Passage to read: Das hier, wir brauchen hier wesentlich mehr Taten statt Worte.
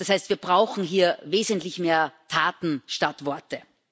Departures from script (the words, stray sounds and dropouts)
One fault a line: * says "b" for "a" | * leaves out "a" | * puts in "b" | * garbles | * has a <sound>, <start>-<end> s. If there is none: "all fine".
* says "heißt" for "hier"